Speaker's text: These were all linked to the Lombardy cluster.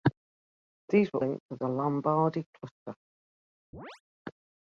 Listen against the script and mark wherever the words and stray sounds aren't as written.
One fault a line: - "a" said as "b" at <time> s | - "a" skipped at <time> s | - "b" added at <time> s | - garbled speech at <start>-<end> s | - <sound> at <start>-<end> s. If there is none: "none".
- "all" skipped at 1.2 s
- chirp at 3.7-4.0 s